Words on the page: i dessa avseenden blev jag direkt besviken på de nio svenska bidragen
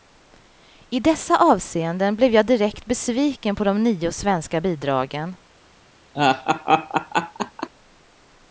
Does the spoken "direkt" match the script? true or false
true